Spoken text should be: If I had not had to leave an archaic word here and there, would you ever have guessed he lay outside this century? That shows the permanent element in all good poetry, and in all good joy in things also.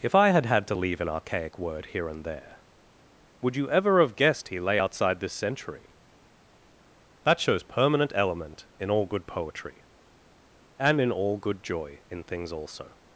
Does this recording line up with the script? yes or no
no